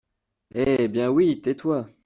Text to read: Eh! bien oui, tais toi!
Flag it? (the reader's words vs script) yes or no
no